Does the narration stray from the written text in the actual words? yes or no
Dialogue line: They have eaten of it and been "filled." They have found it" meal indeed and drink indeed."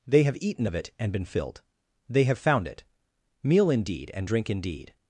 no